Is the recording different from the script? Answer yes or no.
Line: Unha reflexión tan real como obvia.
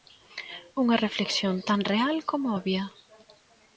no